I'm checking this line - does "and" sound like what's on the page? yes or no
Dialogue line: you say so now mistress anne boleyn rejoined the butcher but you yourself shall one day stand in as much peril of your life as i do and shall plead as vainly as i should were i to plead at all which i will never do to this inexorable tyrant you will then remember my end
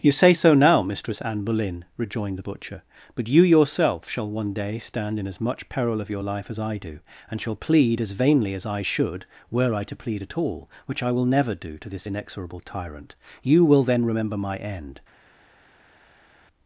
yes